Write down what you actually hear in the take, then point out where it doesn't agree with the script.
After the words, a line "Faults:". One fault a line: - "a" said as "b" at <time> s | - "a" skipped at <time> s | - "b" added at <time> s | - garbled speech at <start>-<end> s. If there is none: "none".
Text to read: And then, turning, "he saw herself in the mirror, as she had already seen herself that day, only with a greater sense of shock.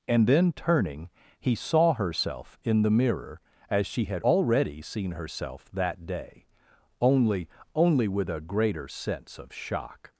And then, turning, "he saw herself in the mirror, as she had already seen herself that day, only only with a greater sense of shock.
Faults:
- "only" added at 7.7 s